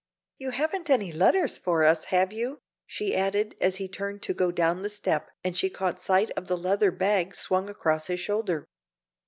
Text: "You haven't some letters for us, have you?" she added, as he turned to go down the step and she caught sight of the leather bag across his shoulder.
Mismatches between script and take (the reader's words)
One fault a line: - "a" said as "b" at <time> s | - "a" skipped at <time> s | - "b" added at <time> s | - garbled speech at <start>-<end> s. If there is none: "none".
- "some" said as "any" at 0.9 s
- "swung" added at 7.3 s